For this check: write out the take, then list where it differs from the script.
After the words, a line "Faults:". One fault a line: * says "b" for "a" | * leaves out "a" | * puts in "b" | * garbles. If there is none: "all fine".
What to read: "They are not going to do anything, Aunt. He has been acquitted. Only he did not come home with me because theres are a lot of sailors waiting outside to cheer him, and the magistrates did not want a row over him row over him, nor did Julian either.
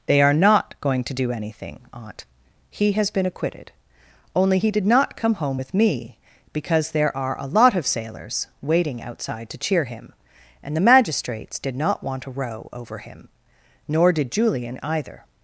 "They are not going to do anything, Aunt. He has been acquitted. Only he did not come home with me because there are a lot of sailors waiting outside to cheer him, and the magistrates did not want a row over him, nor did Julian either.
Faults:
* says "there" for "theres"
* leaves out "row over him"